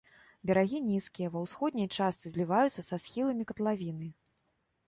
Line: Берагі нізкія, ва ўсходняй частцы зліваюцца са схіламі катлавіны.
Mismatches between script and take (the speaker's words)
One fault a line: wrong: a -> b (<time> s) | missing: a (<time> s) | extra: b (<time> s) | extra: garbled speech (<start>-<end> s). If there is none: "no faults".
no faults